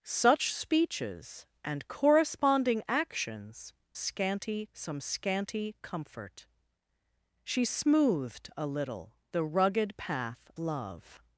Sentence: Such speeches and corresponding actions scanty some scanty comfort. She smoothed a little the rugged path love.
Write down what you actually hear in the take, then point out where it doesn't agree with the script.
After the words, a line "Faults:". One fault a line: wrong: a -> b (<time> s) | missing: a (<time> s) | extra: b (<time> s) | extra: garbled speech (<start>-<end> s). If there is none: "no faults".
Such speeches and corresponding actions scanty some scanty comfort. She smoothed a little the rugged path love.
Faults:
no faults